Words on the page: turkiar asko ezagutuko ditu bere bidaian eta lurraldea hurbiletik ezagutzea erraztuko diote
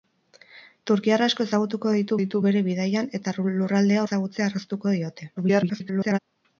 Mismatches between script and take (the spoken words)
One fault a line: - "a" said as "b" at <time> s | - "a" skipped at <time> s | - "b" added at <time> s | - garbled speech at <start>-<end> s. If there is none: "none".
- "ditu" added at 2.2 s
- "hurbiletik" skipped at 4.1 s
- garbled speech at 5.4-6.2 s